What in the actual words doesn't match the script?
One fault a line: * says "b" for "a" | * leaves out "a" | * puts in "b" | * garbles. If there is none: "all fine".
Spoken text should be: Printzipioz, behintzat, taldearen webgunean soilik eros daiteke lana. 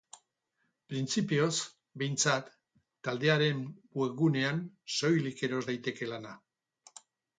all fine